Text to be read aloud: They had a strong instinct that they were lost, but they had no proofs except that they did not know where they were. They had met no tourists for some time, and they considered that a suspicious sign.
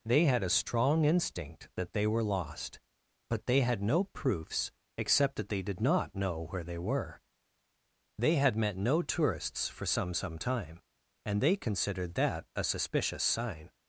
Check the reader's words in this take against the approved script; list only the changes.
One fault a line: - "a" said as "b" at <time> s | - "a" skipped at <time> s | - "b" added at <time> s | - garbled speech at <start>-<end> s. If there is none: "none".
- "some" added at 10.2 s